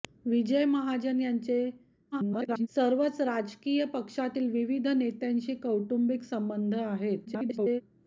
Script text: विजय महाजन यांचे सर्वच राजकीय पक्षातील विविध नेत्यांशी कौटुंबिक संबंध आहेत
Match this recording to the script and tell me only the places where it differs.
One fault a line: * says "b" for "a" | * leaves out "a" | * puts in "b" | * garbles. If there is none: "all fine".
* garbles
* garbles